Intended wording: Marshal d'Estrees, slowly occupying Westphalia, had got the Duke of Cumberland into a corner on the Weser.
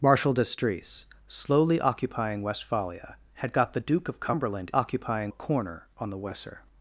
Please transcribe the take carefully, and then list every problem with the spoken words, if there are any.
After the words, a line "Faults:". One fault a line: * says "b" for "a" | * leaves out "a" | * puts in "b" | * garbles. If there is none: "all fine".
Marshal d'Estrees, slowly occupying Westphalia, had got the Duke of Cumberland occupying a corner on the Weser.
Faults:
* says "occupying" for "into"